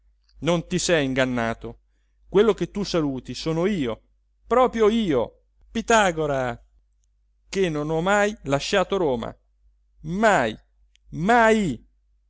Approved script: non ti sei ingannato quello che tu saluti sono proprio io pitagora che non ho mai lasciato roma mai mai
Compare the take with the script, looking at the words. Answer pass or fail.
fail